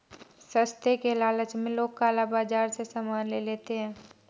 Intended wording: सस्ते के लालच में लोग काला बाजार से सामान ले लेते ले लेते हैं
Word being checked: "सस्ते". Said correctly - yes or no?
yes